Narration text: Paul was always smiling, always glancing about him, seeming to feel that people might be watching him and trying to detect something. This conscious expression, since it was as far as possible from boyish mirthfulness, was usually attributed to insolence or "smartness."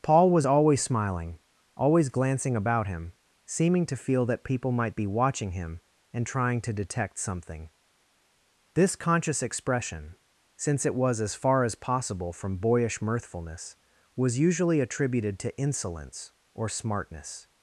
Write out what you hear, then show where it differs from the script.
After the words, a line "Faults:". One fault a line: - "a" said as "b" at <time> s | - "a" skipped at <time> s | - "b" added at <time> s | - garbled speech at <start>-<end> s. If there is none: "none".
Paul was always smiling, always glancing about him, seeming to feel that people might be watching him and trying to detect something. This conscious expression, since it was as far as possible from boyish mirthfulness, was usually attributed to insolence or "smartness."
Faults:
none